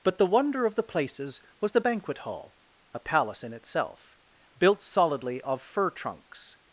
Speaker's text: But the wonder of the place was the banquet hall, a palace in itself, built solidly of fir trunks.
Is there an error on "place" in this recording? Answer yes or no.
yes